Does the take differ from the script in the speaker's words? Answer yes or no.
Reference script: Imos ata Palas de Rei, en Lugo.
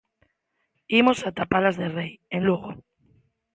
no